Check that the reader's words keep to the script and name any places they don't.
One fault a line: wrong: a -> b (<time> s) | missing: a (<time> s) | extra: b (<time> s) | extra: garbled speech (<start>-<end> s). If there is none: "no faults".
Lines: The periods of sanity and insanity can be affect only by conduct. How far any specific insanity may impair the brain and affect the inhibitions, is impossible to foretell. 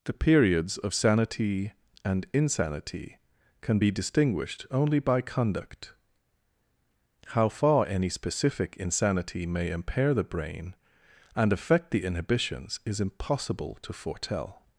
wrong: affect -> distinguished (3.9 s)